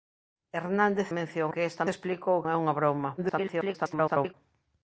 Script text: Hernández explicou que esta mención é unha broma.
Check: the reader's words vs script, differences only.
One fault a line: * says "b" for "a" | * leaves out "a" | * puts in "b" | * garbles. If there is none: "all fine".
* says "mención" for "explicou"
* says "explicou" for "mención"
* garbles